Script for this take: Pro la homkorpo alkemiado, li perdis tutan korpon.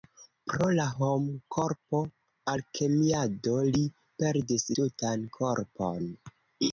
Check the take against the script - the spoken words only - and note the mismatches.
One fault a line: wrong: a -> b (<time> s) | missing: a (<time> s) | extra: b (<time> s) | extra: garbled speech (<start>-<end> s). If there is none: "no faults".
no faults